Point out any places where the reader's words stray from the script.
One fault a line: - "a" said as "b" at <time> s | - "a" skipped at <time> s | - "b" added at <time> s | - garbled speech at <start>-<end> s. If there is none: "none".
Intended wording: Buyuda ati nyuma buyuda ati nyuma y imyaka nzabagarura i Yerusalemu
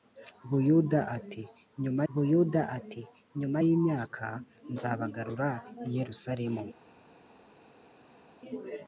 none